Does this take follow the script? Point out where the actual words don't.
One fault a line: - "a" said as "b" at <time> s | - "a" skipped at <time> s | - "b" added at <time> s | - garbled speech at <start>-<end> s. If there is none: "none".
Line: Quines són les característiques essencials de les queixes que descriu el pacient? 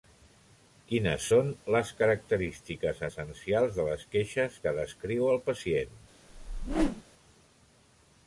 none